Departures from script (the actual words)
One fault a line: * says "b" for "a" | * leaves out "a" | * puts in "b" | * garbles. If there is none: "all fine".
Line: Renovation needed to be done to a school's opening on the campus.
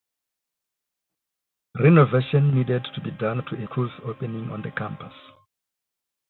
all fine